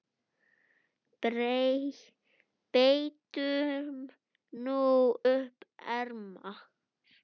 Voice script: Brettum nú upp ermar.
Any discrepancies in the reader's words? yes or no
no